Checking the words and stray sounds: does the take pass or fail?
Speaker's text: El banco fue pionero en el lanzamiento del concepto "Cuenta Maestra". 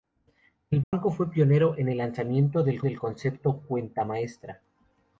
fail